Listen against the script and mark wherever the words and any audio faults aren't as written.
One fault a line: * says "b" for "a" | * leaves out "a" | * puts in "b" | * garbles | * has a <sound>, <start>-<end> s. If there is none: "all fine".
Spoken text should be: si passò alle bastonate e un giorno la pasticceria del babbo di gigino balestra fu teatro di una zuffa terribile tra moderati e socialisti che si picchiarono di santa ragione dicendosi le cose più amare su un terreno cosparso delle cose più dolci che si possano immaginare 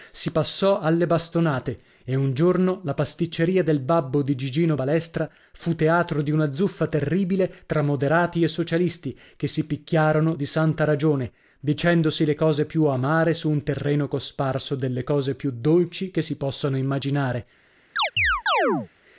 * has a chirp, 18.0-18.9 s